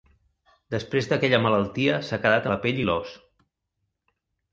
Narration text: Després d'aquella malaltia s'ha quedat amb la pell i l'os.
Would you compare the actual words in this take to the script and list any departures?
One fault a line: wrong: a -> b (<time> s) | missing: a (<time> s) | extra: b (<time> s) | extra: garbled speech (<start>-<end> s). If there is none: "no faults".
missing: amb (2.5 s)